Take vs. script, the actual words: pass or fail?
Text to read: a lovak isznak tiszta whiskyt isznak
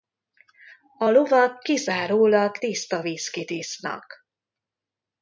fail